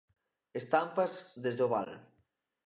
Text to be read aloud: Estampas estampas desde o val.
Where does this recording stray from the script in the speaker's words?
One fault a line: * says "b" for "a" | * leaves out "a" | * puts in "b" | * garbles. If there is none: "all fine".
* leaves out "estampas"